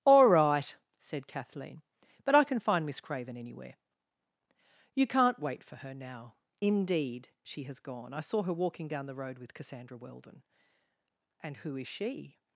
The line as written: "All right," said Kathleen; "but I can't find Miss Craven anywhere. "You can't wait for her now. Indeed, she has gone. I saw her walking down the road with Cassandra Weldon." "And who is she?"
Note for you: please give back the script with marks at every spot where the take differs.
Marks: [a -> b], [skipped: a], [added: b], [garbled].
"All right," said Kathleen; "but I [can't -> can] find Miss Craven anywhere. "You can't wait for her now. Indeed, she has gone. I saw her walking down the road with Cassandra Weldon." "And who is she?"